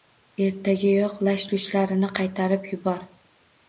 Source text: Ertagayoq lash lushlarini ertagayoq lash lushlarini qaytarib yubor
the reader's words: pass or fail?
fail